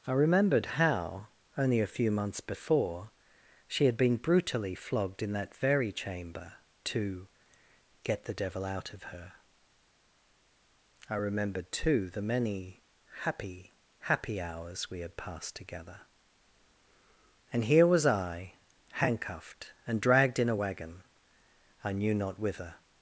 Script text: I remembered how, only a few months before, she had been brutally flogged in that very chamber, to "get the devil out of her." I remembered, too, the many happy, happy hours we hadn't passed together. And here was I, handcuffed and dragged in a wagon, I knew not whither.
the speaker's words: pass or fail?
fail